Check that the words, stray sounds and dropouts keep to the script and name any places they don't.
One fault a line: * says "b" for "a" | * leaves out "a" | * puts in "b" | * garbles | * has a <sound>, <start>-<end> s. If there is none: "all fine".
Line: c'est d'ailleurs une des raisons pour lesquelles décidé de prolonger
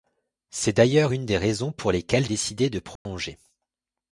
* has a dropout, 3.0-3.1 s